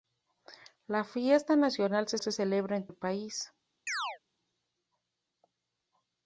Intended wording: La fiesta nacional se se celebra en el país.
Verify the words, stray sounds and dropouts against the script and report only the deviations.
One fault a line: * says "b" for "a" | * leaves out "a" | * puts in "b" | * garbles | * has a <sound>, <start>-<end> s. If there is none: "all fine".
* has a chirp, 3.9-4.2 s